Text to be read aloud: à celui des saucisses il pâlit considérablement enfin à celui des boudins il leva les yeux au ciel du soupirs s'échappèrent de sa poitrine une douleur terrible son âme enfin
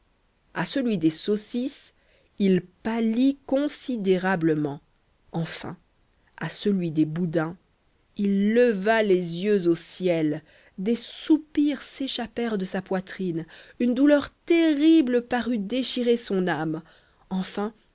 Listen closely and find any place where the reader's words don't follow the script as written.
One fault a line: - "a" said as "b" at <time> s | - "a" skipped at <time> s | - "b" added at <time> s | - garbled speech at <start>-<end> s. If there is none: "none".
- "du" said as "des" at 10.8 s
- "parut déchirer" added at 15.2 s